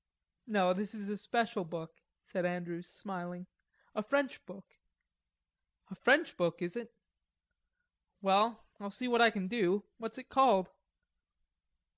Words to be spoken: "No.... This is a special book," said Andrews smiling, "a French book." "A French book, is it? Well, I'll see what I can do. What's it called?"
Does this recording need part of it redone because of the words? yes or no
no